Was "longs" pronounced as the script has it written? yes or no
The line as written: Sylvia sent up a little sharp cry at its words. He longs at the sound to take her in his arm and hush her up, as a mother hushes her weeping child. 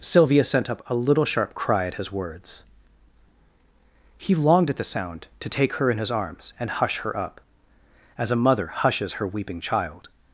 no